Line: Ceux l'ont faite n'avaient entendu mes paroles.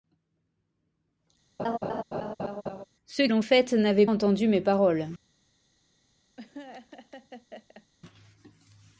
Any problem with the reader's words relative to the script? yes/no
no